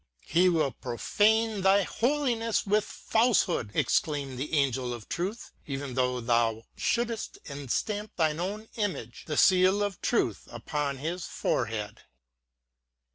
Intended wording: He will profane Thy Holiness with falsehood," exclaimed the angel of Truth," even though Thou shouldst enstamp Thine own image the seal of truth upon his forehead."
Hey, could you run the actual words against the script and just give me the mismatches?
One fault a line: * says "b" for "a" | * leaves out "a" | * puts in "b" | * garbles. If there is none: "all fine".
all fine